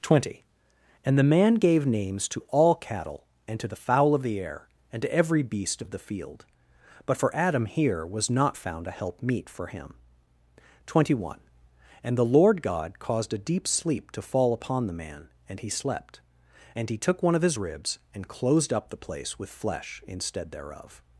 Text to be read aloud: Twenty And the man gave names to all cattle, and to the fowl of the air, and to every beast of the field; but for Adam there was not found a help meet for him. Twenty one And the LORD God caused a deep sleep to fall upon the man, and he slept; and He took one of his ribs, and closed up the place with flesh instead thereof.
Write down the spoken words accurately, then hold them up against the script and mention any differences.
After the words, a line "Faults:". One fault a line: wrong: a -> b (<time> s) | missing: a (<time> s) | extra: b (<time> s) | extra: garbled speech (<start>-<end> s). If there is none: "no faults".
Twenty And the man gave names to all cattle, and to the fowl of the air, and to every beast of the field; but for Adam here was not found a help meet for him. Twenty one And the LORD God caused a deep sleep to fall upon the man, and he slept; and He took one of his ribs, and closed up the place with flesh instead thereof.
Faults:
wrong: there -> here (7.7 s)